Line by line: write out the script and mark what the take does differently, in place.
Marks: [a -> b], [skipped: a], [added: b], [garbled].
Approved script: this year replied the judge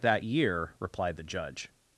[this -> that] year replied the judge